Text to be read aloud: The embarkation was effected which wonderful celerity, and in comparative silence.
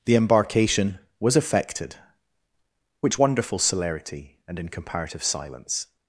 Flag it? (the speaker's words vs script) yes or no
no